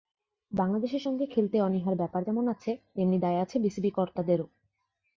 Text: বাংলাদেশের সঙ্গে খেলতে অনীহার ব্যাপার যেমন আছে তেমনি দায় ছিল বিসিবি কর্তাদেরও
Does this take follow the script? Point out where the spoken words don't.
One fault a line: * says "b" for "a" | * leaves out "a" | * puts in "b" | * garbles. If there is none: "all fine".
* says "আছে" for "ছিল"